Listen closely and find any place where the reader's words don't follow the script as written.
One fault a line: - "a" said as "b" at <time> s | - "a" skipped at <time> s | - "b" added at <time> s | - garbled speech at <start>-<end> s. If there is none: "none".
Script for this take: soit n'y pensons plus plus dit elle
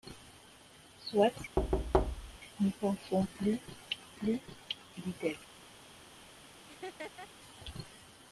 none